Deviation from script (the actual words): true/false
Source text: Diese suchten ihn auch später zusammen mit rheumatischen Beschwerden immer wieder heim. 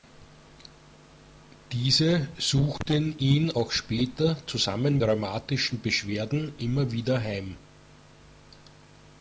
true